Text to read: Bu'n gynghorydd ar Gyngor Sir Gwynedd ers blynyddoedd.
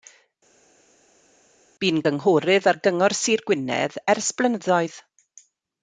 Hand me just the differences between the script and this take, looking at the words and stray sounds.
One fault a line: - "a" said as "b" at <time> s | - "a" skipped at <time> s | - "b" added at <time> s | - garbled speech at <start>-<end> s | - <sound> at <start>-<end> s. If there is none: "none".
none